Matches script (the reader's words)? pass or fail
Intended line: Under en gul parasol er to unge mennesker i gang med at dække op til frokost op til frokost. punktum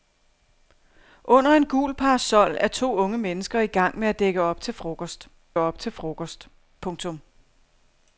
pass